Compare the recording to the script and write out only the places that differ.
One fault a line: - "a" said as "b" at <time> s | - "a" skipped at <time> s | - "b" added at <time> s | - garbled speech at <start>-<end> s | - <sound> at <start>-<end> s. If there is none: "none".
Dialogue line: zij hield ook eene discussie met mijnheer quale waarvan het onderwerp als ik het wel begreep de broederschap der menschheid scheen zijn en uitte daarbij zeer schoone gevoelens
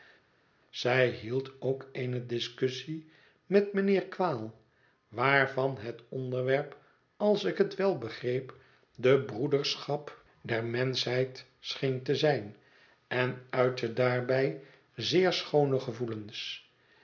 - "te" added at 12.0 s